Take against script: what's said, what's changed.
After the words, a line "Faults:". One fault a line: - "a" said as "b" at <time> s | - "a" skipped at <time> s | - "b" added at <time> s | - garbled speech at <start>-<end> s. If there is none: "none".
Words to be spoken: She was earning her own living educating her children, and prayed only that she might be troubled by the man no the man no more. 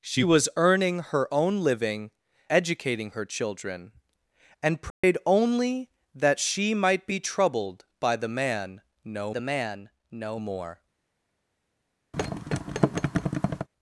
She was earning her own living educating her children, and prayed only that she might be troubled by the man no the man no more.
Faults:
none